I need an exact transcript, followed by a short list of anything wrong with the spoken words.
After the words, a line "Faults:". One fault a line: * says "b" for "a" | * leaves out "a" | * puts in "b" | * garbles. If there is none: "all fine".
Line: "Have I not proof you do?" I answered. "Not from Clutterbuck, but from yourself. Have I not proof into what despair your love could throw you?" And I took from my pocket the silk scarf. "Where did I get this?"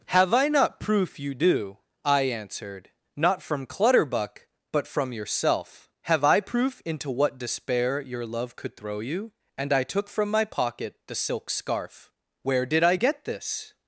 "Have I not proof you do?" I answered. "Not from Clutterbuck, but from yourself. Have I proof into what despair your love could throw you?" And I took from my pocket the silk scarf. "Where did I get this?"
Faults:
* leaves out "not"